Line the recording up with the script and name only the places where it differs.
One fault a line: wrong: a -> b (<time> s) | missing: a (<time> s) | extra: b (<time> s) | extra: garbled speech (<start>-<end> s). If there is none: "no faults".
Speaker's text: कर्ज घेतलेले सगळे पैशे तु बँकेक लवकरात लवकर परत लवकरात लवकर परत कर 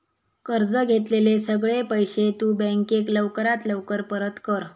missing: लवकरात लवकर परत (4.4 s)